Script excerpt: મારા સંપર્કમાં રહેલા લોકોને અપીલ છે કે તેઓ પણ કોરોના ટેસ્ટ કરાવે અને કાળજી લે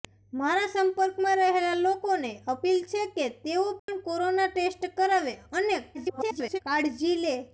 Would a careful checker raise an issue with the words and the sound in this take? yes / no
yes